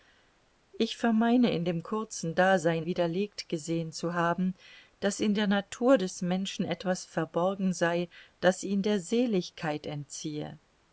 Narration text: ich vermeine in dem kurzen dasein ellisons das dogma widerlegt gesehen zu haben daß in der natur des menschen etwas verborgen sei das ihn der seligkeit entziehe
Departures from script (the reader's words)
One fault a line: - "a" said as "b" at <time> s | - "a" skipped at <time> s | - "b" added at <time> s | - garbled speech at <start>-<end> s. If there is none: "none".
- "ellisons das dogma" skipped at 2.9 s